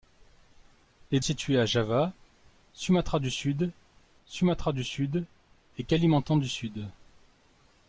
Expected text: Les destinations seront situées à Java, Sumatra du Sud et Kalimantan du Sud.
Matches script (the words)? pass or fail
fail